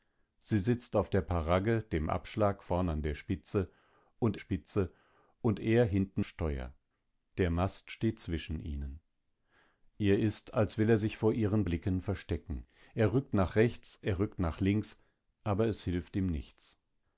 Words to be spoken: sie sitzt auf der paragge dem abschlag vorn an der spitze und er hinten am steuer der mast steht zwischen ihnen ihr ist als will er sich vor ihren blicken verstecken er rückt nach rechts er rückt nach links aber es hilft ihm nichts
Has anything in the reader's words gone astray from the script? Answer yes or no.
yes